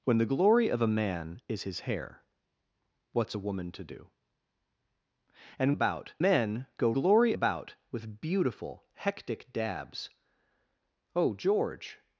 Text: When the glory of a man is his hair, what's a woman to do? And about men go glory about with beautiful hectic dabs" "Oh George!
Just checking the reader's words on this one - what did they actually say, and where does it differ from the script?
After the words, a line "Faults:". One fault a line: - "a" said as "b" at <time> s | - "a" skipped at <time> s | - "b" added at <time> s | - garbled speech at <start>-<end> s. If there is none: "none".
When the glory of a man is his hair, what's a woman to do? And about men go glory about with beautiful hectic dabs" "Oh George!
Faults:
none